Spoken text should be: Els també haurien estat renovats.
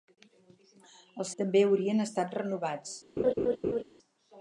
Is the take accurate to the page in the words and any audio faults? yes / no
no